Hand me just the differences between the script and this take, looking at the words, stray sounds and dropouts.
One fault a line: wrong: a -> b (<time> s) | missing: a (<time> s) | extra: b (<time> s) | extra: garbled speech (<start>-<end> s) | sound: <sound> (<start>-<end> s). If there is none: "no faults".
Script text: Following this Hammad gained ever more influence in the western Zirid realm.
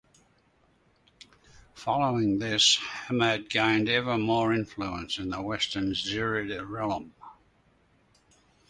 no faults